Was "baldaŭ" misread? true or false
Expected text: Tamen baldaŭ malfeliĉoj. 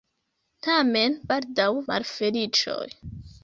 false